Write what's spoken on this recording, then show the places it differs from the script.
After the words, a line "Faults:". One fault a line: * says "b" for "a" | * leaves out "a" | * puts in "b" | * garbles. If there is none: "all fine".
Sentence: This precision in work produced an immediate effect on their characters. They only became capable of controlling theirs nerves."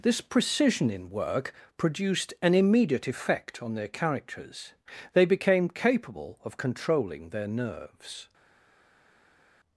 This precision in work produced an immediate effect on their characters. They became capable of controlling their nerves."
Faults:
* leaves out "only"
* says "their" for "theirs"